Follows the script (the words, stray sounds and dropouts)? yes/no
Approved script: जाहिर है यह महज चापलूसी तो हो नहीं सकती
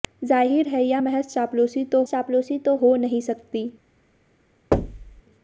no